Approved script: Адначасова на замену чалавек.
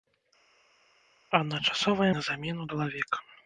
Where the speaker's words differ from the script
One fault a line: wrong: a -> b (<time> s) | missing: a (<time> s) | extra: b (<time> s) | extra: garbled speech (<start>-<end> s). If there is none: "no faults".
no faults